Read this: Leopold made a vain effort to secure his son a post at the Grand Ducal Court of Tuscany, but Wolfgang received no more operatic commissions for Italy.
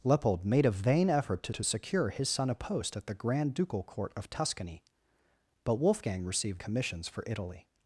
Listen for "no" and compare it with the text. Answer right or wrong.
wrong